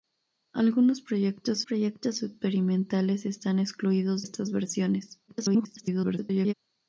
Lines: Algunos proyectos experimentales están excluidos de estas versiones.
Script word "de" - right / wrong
wrong